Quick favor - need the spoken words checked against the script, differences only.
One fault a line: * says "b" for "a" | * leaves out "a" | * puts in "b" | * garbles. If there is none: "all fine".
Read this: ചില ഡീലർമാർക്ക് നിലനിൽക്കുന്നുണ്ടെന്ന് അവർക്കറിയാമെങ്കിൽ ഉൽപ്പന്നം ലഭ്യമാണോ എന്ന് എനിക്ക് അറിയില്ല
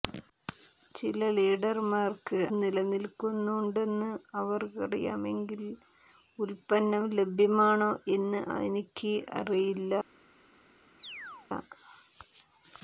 all fine